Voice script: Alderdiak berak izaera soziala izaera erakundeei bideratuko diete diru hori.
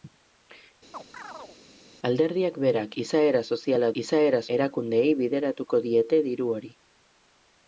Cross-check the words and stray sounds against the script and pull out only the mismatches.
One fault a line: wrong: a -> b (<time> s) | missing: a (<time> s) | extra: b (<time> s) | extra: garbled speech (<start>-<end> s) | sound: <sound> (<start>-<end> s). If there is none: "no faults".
sound: chirp (0.9-1.6 s)